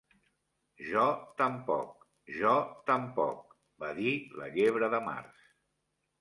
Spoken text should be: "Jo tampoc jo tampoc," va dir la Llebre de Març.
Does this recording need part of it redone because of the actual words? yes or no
no